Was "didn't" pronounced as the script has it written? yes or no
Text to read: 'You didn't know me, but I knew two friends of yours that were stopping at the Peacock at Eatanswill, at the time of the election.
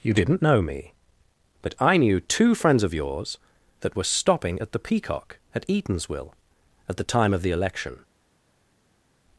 yes